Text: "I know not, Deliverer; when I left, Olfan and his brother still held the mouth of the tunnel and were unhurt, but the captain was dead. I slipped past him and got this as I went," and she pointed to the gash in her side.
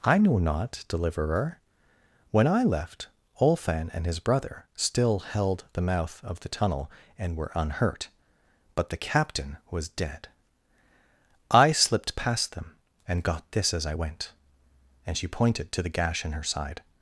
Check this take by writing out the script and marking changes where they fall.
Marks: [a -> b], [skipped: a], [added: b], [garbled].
"I know not, Deliverer; when I left, Olfan and his brother still held the mouth of the tunnel and were unhurt, but the captain was dead. I slipped past [him -> them] and got this as I went," and she pointed to the gash in her side.